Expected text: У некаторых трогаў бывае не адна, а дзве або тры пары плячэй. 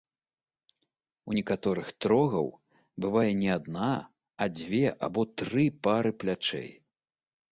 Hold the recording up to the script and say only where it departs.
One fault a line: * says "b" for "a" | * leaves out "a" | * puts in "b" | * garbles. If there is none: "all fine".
all fine